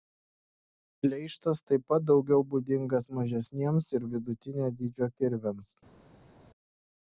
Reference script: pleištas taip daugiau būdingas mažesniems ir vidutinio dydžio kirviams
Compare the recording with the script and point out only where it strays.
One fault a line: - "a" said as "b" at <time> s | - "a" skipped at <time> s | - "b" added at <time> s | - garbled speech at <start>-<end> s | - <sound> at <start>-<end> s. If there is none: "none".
- "pat" added at 1.9 s